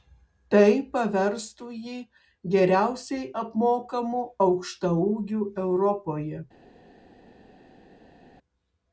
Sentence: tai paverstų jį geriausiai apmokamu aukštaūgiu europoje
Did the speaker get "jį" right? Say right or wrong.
right